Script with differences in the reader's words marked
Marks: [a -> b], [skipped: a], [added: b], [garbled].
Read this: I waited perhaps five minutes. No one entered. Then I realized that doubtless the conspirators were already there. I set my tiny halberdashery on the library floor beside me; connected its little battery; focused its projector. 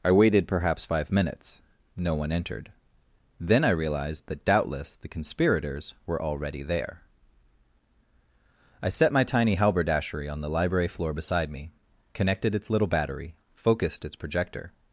I waited perhaps five minutes. No one entered. Then I realized that doubtless the conspirators were already there. I set my tiny halberdashery on the library floor beside me; connected its little battery; focused its projector.